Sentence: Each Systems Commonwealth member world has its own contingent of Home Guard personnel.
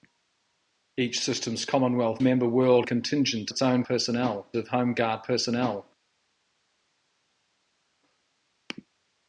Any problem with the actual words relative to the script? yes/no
yes